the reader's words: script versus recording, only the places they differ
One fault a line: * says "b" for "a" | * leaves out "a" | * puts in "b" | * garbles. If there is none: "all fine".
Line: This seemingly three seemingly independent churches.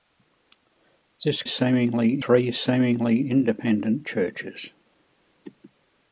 all fine